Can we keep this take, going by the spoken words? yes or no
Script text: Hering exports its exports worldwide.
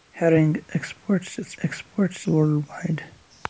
yes